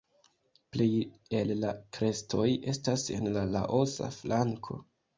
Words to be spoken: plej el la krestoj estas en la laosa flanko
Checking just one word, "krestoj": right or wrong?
right